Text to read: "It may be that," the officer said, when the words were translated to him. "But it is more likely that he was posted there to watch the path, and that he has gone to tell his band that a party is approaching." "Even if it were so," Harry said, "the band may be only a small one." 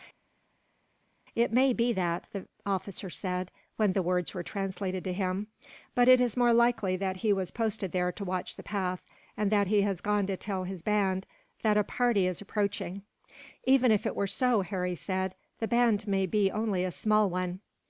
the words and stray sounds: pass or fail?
pass